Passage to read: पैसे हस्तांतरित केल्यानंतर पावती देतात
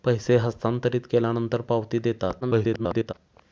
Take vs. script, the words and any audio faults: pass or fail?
fail